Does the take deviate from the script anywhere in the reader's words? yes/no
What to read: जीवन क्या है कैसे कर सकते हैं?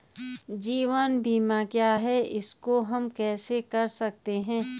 yes